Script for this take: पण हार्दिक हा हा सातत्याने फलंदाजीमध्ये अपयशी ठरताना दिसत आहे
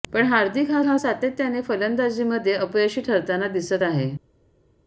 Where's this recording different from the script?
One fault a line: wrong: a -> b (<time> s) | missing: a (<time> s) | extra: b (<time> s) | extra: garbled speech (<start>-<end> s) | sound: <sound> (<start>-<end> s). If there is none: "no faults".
no faults